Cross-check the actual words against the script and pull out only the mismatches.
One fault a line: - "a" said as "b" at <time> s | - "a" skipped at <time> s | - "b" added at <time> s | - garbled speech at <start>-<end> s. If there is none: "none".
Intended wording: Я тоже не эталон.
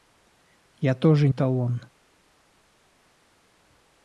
- "не" skipped at 1.3 s